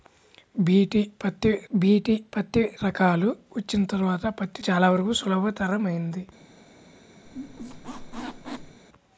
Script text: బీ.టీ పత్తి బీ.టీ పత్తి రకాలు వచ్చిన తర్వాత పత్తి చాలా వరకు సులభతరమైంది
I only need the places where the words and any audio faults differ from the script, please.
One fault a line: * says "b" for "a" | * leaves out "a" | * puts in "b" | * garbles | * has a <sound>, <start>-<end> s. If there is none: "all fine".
* has a squeak, 7.2-8.8 s